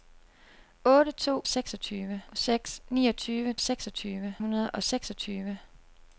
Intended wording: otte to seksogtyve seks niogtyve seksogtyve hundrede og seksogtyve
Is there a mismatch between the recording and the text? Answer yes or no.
no